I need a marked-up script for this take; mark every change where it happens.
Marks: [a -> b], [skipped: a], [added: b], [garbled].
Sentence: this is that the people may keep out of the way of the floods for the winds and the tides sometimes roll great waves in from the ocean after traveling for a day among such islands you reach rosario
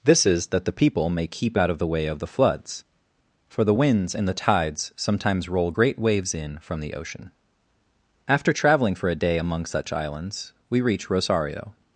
this is that the people may keep out of the way of the floods for the winds and the tides sometimes roll great waves in from the ocean after traveling for a day among such islands [you -> we] reach rosario